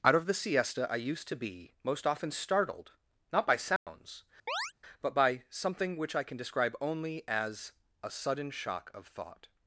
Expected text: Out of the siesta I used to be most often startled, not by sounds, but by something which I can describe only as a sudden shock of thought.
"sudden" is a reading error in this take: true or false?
false